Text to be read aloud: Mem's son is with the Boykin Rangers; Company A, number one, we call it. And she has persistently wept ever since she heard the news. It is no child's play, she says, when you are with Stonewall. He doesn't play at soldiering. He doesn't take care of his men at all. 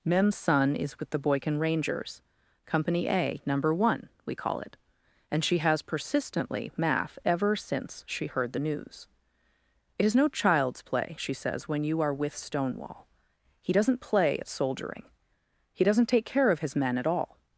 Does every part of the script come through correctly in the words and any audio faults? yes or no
no